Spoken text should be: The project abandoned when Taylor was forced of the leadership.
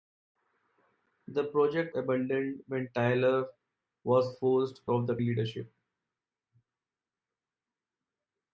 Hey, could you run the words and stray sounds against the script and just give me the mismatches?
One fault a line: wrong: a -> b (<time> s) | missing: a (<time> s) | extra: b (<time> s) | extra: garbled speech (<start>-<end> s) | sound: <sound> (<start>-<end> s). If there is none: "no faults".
no faults